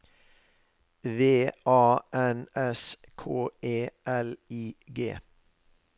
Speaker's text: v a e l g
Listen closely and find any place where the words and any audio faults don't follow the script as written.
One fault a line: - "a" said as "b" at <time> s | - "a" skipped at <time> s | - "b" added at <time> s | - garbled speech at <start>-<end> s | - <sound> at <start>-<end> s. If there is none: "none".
- "n s k" added at 2.1 s
- "i" added at 4.5 s